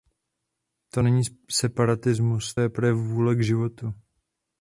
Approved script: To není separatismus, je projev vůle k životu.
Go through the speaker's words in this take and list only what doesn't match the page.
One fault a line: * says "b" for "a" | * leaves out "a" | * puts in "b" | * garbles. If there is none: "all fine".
all fine